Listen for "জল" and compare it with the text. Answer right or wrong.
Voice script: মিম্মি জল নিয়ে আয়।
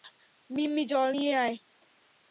right